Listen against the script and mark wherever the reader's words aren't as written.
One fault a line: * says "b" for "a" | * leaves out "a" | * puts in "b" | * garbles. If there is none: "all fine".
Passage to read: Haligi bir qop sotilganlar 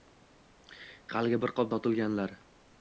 all fine